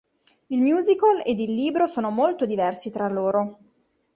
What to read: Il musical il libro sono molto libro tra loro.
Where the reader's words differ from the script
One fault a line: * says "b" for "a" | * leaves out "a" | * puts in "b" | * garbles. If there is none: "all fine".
* puts in "ed"
* says "diversi" for "libro"